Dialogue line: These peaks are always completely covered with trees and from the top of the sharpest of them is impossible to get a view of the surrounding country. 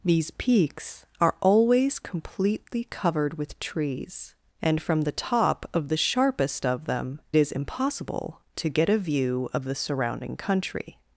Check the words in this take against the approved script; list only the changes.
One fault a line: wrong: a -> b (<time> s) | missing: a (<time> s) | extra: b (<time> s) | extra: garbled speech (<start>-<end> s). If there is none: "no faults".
no faults